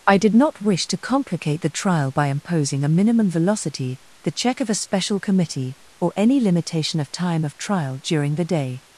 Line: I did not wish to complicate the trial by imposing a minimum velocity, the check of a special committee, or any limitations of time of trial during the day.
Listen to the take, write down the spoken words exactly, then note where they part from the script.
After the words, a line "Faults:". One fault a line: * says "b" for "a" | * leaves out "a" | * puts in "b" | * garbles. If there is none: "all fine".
I did not wish to complicate the trial by imposing a minimum velocity, the check of a special committee, or any limitation of time of trial during the day.
Faults:
* says "limitation" for "limitations"